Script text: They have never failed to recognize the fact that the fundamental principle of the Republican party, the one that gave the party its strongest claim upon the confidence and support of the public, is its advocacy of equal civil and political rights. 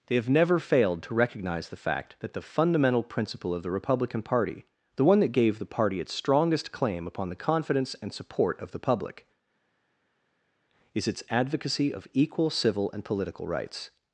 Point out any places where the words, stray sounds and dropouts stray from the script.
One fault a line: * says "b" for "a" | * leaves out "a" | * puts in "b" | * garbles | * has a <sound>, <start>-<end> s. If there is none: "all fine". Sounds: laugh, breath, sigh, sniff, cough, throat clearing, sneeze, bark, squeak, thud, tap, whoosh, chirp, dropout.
all fine